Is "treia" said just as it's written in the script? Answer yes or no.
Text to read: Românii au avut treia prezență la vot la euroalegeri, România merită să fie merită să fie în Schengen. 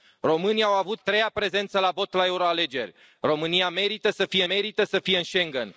yes